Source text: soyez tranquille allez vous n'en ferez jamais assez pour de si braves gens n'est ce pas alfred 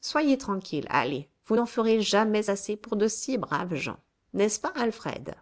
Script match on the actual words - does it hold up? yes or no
yes